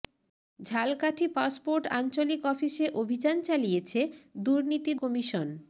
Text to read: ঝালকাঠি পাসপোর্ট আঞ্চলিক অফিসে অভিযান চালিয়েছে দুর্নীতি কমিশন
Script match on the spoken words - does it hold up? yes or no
yes